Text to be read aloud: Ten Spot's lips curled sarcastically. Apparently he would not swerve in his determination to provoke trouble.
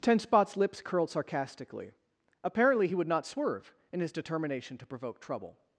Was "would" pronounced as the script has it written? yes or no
yes